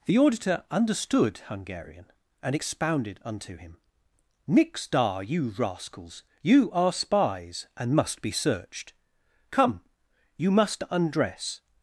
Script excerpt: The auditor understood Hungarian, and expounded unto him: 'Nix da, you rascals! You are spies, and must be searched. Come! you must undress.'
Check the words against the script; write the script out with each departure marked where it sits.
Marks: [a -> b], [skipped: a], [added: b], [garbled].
The auditor understood Hungarian, and expounded unto him: 'Nix da, you rascals! You are spies, and must be searched. Come! you must undress.'